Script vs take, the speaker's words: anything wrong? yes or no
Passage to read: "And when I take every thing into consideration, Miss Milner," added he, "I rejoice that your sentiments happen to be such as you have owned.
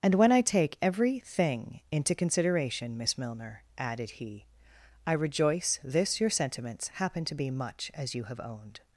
yes